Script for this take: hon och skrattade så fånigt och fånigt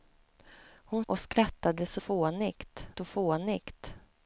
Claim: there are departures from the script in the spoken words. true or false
false